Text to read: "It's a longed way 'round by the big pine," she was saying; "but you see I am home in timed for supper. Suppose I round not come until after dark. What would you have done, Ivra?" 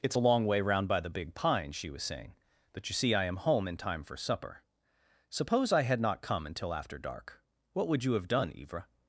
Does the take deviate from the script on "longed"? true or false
true